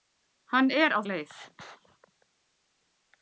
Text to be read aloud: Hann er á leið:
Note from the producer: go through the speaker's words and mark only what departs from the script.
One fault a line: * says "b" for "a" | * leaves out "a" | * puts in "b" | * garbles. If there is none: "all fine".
all fine